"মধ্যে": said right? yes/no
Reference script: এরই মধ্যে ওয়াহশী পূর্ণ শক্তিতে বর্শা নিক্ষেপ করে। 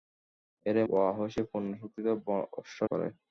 no